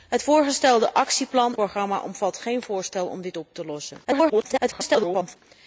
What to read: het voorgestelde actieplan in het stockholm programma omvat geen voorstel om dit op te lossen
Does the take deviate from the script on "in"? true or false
true